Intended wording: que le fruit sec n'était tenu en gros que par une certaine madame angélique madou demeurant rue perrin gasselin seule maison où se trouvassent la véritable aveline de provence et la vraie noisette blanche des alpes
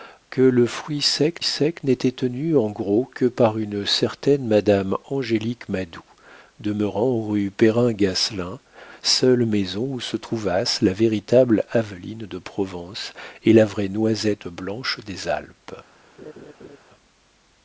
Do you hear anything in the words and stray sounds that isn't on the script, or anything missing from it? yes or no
yes